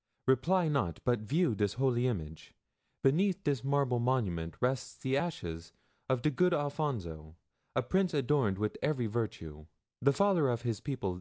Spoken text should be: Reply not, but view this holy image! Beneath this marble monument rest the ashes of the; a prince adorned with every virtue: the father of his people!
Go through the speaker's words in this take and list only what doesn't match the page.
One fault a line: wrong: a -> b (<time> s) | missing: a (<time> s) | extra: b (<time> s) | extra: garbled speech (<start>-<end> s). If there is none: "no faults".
extra: good Alfonso (6.3 s)